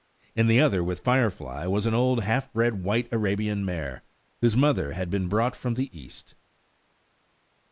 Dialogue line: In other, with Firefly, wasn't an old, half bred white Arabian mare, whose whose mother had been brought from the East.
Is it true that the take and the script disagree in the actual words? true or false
true